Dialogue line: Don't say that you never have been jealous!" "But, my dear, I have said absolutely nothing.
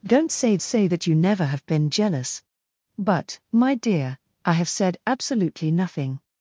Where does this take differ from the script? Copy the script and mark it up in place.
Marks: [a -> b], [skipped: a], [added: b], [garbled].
Don't say [added: say] that you never have been jealous!" "But, my dear, I have said absolutely nothing.